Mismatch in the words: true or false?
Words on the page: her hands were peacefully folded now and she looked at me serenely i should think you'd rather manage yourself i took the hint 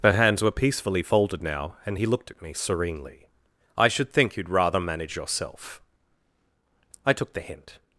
true